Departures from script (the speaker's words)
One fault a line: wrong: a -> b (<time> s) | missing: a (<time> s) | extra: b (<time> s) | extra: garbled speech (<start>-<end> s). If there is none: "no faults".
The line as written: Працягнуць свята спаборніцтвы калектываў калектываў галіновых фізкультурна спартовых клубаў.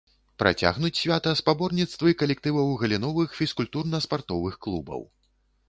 missing: калектываў (2.7 s)